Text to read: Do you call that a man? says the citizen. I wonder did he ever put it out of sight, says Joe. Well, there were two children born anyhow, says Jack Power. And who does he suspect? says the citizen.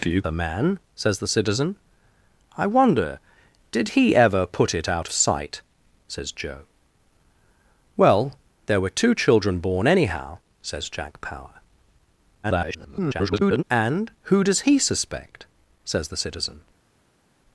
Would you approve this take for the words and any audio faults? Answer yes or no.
no